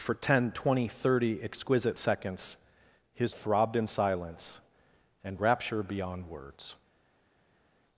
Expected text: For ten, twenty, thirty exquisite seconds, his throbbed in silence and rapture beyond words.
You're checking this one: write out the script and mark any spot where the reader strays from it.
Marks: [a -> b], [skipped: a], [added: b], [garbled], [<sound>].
For ten, twenty, thirty exquisite seconds, his throbbed in silence and rapture beyond words.